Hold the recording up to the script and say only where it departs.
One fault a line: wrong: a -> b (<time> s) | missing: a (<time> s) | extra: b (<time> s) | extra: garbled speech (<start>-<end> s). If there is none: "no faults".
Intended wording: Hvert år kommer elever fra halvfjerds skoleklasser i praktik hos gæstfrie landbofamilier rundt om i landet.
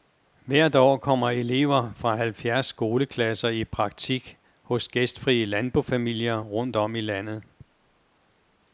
no faults